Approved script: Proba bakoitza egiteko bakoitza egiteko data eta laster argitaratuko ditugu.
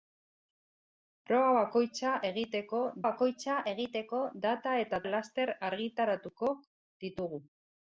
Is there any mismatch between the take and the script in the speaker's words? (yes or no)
no